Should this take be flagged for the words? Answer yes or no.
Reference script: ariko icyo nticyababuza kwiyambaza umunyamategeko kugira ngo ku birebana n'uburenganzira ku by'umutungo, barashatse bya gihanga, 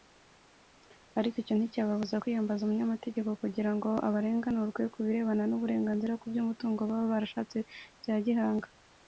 yes